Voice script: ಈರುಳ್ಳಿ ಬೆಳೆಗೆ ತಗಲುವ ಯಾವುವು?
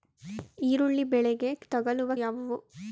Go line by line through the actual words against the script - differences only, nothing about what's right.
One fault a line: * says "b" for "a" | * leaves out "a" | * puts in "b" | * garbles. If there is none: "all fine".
all fine